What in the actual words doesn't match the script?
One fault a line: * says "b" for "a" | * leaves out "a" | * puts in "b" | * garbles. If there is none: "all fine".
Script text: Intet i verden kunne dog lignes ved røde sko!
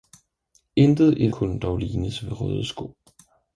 * leaves out "verden"